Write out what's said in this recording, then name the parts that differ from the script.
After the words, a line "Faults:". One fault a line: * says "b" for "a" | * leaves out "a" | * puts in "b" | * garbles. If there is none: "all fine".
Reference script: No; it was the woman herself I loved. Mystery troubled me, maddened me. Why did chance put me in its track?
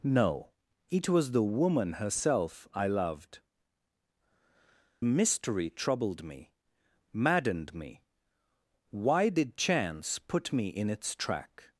No; it was the woman herself I loved. Mystery troubled me, maddened me. Why did chance put me in its track?
Faults:
all fine